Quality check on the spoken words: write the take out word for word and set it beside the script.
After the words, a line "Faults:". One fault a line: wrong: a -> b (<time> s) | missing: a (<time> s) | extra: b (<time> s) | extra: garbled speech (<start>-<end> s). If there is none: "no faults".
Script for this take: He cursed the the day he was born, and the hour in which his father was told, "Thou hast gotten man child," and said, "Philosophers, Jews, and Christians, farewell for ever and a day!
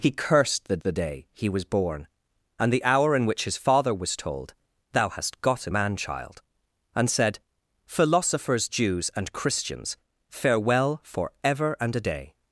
He cursed the the day he was born, and the hour in which his father was told, "Thou hast gotten man child," and said, "Philosophers, Jews, and Christians, farewell for ever and a day!
Faults:
no faults